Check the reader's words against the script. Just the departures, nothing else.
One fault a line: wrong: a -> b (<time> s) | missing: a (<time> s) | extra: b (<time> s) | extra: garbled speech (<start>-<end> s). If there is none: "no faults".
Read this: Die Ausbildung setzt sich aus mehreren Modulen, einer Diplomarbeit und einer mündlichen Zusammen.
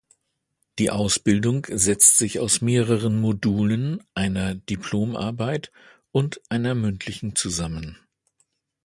no faults